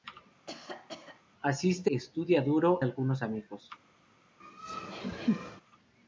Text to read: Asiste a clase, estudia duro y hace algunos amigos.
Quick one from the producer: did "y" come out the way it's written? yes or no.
no